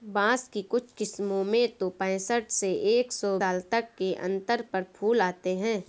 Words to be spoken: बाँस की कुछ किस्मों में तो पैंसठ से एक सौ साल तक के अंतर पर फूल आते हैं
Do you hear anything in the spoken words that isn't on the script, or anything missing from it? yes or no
no